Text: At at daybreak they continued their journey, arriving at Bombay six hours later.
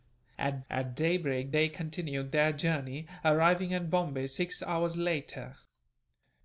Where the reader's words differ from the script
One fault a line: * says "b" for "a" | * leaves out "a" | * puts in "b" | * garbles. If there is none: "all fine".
all fine